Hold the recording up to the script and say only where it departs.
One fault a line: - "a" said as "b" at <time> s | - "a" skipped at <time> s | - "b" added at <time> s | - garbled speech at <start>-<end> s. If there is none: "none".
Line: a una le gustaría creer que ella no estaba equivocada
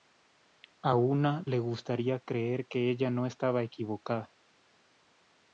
none